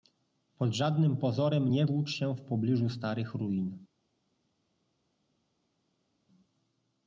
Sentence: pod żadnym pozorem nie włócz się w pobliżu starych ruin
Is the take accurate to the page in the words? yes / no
yes